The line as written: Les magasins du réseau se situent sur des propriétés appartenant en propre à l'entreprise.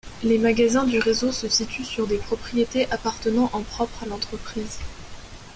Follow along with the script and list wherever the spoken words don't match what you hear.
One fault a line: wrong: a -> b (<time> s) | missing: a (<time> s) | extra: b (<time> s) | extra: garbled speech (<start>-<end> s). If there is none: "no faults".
no faults